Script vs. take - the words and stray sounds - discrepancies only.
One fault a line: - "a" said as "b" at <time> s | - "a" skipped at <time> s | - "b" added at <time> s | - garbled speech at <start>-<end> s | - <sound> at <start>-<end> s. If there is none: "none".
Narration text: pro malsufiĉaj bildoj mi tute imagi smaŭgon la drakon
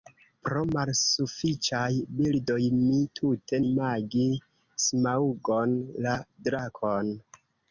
none